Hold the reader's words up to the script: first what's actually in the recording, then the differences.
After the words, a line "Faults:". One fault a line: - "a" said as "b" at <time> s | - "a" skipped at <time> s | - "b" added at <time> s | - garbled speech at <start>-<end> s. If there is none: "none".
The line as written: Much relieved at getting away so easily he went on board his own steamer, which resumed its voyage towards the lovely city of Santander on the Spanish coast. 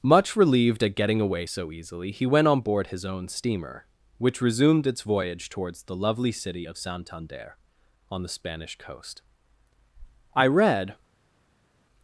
Much relieved at getting away so easily he went on board his own steamer, which resumed its voyage towards the lovely city of Santander on the Spanish coast. I read
Faults:
- "I read" added at 10.3 s